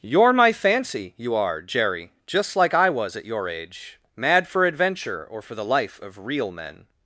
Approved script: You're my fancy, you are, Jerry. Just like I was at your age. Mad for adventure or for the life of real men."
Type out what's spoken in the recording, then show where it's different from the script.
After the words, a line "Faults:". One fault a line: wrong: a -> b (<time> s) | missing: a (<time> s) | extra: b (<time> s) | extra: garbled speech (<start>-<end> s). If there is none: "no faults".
You're my fancy, you are, Jerry. Just like I was at your age. Mad for adventure or for the life of real men."
Faults:
no faults